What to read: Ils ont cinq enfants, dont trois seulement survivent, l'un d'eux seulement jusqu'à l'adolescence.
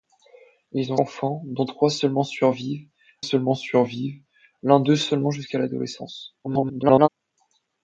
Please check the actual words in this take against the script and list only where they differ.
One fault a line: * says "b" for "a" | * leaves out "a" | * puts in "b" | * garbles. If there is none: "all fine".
* leaves out "cinq"
* puts in "seulement survivent"
* garbles